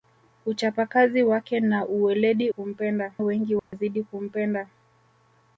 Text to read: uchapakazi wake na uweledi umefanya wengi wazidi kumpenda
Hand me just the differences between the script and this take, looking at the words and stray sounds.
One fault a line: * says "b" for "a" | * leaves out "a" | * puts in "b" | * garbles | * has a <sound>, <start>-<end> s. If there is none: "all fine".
* says "kumpenda" for "umefanya"
* has a dropout, 3.6-3.7 s